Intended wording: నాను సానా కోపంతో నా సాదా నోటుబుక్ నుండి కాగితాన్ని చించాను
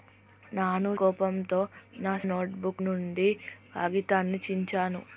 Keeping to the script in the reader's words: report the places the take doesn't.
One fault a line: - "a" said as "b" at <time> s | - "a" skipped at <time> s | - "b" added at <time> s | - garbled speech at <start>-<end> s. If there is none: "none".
- "సానా" skipped at 0.9 s
- "సాదా" skipped at 2.1 s